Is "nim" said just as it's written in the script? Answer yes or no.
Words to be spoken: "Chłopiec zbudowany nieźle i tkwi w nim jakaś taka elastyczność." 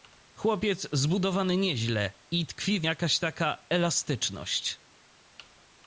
no